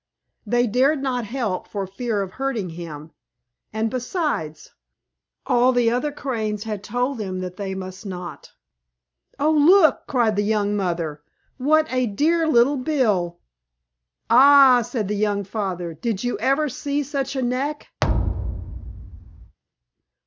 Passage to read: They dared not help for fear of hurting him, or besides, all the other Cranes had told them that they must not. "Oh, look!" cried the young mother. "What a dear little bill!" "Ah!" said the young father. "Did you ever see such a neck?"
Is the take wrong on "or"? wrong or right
wrong